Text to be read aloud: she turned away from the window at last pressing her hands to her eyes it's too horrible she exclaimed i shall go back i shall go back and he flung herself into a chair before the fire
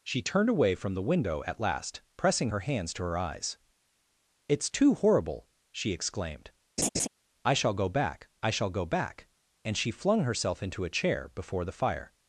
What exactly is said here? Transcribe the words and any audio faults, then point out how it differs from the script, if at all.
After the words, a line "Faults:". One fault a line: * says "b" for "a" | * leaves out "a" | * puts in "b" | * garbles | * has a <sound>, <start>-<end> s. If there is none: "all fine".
she turned away from the window at last pressing her hands to her eyes it's too horrible she exclaimed i shall go back i shall go back and she flung herself into a chair before the fire
Faults:
* has a laugh, 6.8-7.1 s
* says "she" for "he"